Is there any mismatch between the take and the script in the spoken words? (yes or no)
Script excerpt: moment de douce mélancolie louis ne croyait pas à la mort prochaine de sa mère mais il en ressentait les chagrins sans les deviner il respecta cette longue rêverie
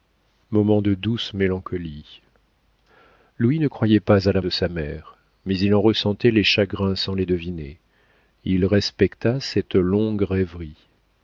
yes